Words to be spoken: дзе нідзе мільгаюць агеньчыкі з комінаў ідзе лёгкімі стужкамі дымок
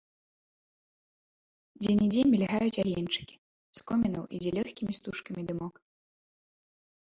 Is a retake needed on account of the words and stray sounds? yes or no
no